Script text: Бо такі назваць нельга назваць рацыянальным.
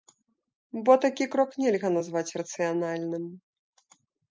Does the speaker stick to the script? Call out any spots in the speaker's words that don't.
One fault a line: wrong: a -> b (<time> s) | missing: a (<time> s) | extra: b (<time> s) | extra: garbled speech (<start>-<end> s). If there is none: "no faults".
wrong: назваць -> крок (1.4 s)